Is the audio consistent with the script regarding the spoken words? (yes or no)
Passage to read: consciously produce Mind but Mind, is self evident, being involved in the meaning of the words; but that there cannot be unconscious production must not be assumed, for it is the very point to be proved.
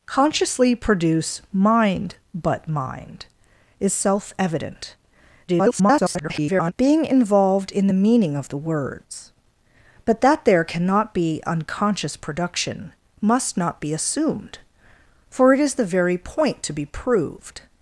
no